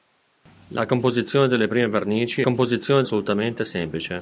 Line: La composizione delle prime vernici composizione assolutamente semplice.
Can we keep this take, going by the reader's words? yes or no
yes